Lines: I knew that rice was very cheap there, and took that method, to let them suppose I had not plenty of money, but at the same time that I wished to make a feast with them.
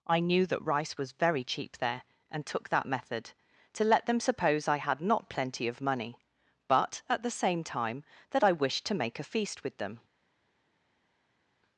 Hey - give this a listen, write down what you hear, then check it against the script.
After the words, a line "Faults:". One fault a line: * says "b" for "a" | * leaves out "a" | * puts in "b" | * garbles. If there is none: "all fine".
I knew that rice was very cheap there, and took that method, to let them suppose I had not plenty of money, but at the same time that I wished to make a feast with them.
Faults:
all fine